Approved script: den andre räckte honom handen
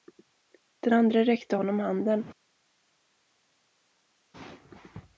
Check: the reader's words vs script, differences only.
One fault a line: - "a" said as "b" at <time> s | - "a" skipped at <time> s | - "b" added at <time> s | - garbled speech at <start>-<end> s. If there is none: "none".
none